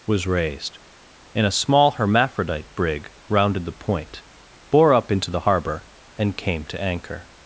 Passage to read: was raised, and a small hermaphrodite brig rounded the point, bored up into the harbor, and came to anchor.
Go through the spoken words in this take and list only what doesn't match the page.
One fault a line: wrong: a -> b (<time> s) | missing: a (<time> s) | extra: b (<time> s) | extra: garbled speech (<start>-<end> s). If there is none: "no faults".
wrong: bored -> bore (4.7 s)